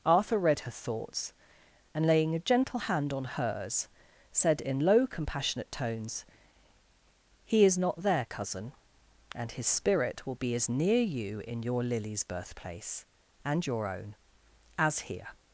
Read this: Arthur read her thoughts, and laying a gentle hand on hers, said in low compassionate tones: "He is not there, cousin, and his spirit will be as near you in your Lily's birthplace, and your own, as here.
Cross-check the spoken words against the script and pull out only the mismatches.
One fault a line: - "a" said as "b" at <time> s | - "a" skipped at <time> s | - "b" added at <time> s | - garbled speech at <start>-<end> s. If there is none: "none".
none